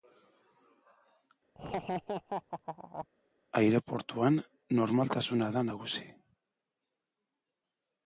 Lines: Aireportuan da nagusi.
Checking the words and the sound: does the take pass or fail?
fail